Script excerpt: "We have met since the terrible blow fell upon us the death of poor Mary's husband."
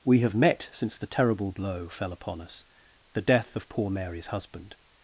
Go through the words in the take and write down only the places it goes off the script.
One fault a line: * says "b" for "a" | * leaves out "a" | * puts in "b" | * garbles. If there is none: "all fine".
all fine